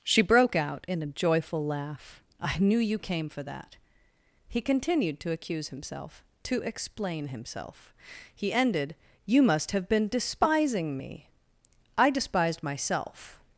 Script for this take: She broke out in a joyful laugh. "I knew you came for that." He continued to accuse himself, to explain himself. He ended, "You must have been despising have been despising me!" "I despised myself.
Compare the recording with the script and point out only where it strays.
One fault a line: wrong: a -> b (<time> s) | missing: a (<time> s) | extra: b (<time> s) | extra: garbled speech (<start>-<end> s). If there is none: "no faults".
missing: have been despising (11.0 s)